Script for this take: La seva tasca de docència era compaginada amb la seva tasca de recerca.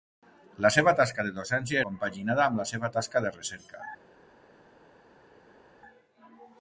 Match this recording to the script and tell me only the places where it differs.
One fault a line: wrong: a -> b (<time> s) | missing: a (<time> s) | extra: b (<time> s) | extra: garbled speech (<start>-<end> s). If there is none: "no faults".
missing: era (1.8 s)